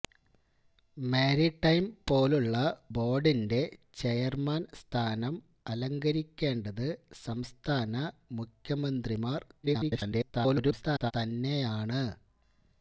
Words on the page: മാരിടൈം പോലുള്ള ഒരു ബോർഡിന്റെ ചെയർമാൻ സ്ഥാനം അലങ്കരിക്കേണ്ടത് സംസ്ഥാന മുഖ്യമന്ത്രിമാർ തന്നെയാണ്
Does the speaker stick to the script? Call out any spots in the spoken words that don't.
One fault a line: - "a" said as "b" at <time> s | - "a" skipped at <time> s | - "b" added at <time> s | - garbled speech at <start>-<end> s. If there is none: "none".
- "ഒരു" skipped at 2.5 s
- garbled speech at 9.6-11.1 s